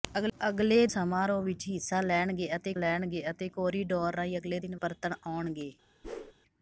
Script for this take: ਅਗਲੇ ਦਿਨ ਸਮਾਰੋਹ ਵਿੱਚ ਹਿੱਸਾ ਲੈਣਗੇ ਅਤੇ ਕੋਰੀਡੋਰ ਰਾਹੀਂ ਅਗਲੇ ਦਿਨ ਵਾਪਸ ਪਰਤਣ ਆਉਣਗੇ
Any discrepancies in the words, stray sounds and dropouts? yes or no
yes